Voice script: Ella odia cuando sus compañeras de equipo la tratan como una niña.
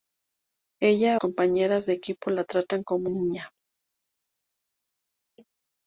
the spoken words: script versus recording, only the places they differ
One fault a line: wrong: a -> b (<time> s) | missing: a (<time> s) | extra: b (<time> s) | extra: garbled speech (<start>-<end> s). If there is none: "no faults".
missing: odia cuando sus (1.2 s)
missing: una (3.1 s)